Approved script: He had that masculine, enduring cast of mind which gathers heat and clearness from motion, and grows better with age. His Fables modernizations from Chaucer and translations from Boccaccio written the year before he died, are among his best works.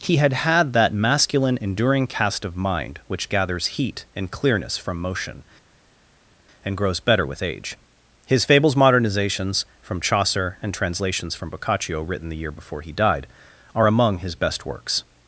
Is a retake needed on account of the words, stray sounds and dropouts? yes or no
yes